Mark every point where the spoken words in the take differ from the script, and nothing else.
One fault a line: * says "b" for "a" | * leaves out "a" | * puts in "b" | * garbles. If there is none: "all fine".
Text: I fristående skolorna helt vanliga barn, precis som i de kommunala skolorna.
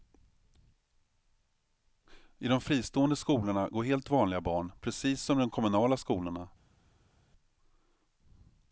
* puts in "de"
* puts in "går"